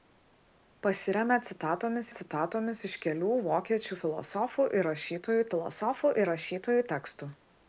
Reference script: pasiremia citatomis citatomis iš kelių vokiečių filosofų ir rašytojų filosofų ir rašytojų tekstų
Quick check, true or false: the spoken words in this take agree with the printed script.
true